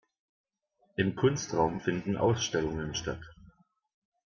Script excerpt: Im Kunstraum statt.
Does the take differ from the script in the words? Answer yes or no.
yes